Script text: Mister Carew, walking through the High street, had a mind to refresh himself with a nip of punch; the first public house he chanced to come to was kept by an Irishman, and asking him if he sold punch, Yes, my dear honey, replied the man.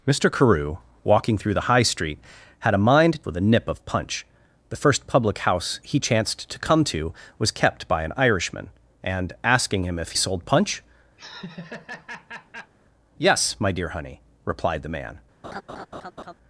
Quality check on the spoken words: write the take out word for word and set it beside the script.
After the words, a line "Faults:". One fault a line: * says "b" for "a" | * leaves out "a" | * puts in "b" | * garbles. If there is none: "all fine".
Mister Carew, walking through the High street, had a mind with a nip of punch; the first public house he chanced to come to was kept by an Irishman, and asking him if sold punch, Yes, my dear honey, replied the man.
Faults:
* leaves out "to refresh himself"
* leaves out "he"